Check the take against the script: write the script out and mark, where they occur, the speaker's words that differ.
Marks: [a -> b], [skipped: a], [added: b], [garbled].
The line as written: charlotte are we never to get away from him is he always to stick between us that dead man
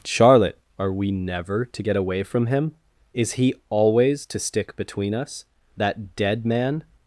charlotte are we never to get away from him is he always to stick between us that dead man